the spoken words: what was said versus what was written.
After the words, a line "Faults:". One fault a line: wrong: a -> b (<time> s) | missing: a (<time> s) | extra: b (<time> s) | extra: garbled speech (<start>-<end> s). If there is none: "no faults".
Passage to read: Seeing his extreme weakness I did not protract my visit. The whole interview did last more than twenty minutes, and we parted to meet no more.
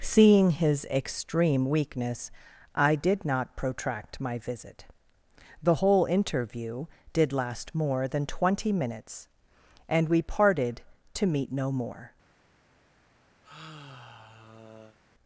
Seeing his extreme weakness I did not protract my visit. The whole interview did last more than twenty minutes, and we parted to meet no more.
Faults:
no faults